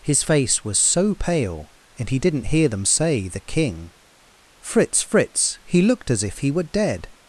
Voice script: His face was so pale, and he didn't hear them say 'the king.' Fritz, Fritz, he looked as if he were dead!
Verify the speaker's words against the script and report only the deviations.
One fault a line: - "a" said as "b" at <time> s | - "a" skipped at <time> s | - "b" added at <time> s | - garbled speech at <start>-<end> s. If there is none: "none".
none